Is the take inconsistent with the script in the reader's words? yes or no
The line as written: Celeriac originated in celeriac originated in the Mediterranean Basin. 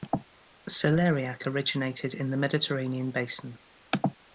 yes